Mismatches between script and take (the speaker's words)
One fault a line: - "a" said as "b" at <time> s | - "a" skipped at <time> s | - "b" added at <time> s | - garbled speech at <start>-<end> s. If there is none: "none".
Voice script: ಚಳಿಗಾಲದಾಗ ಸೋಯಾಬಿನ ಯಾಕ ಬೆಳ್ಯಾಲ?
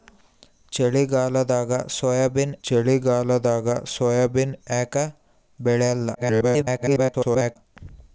- "ಚಳಿಗಾಲದಾಗ ಸೋಯಾಬಿನ" added at 2.6 s
- garbled speech at 6.1-7.6 s